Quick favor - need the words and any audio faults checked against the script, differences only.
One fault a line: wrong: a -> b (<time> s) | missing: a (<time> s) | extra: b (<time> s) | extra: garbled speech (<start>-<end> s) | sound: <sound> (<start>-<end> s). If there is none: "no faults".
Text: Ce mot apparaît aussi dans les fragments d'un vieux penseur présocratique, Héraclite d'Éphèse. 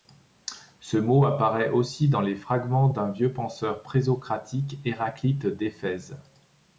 no faults